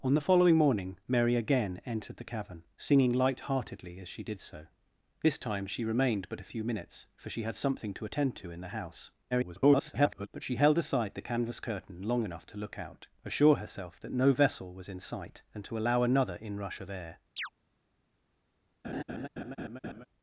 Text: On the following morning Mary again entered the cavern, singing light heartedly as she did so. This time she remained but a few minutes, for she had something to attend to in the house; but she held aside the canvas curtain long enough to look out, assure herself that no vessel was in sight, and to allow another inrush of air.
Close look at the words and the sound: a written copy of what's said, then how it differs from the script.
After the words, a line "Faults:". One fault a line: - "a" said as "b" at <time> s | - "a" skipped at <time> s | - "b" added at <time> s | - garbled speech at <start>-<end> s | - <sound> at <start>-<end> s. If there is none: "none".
On the following morning Mary again entered the cavern, singing light heartedly as she did so. This time she remained but a few minutes, for she had something to attend to in the house; [garbled] but she held aside the canvas curtain long enough to look out, assure herself that no vessel was in sight, and to allow another inrush of air.
Faults:
- garbled speech at 9.3-10.3 s
- chirp at 17.4-17.5 s
- laugh at 18.8-20.1 s